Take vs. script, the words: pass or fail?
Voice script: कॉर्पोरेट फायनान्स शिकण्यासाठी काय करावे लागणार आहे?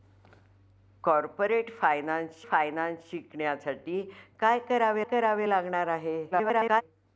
fail